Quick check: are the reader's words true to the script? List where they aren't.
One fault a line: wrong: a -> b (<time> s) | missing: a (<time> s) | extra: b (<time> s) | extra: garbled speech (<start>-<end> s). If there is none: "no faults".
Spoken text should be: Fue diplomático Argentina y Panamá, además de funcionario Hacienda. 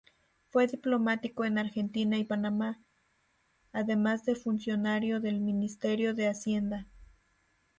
extra: en (1.4 s)
extra: del Ministerio de (5.2 s)